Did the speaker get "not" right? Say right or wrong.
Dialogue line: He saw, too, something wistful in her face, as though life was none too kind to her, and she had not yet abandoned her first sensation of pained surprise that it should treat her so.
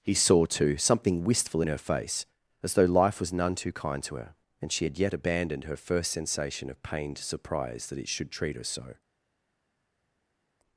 wrong